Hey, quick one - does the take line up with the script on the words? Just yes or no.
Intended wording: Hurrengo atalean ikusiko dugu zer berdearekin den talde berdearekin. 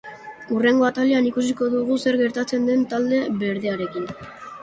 no